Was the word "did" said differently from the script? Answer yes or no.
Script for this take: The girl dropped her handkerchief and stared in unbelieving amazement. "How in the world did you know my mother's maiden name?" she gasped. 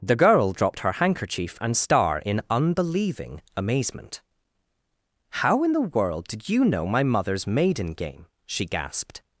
no